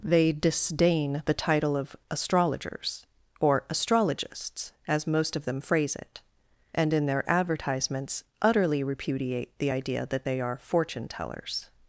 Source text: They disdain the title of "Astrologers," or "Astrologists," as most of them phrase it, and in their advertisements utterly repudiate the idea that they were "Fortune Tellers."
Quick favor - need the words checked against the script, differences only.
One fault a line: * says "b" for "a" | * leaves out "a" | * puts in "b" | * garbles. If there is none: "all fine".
* says "are" for "were"